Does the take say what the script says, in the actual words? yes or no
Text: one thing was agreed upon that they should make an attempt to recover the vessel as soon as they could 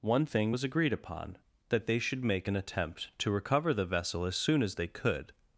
yes